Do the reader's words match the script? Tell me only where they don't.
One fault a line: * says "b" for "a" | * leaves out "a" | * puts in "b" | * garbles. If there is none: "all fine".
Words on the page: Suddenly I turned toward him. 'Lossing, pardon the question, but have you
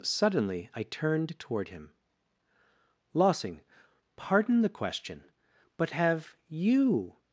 all fine